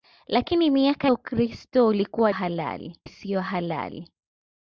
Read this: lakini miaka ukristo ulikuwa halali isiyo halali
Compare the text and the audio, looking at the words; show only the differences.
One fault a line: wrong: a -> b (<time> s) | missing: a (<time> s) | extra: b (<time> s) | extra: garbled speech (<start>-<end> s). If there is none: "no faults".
no faults